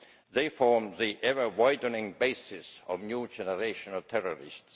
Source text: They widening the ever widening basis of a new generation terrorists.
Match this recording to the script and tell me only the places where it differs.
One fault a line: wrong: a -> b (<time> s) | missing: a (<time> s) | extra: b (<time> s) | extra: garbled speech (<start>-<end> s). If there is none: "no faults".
wrong: widening -> form (0.5 s)
extra: of (3.9 s)